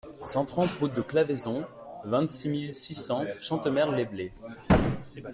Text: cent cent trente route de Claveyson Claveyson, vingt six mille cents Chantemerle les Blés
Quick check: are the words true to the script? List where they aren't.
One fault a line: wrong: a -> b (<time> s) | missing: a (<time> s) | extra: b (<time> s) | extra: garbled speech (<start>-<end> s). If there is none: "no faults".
missing: cent (0.5 s)
missing: Claveyson (1.6 s)
extra: six (2.7 s)